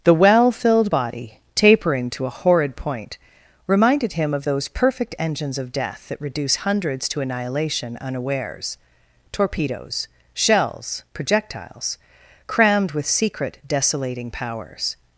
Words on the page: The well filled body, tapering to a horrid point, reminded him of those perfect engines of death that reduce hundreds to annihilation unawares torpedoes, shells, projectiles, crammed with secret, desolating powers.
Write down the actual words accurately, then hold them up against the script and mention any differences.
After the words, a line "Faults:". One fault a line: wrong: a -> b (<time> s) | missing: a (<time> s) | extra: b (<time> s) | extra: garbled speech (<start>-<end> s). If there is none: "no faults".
The well filled body, tapering to a horrid point, reminded him of those perfect engines of death that reduce hundreds to annihilation unawares torpedoes, shells, projectiles, crammed with secret, desolating powers.
Faults:
no faults